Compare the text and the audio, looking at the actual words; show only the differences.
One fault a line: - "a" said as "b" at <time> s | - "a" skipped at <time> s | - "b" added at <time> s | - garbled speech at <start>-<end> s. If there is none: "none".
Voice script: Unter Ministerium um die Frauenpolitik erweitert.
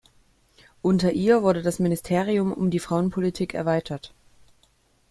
- "ihr wurde das" added at 1.1 s